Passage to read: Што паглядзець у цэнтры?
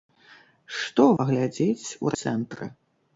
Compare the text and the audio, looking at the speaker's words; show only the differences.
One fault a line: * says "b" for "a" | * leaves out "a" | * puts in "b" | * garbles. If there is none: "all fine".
all fine